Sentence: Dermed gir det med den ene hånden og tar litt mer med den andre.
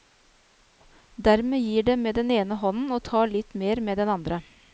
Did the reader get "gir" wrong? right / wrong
right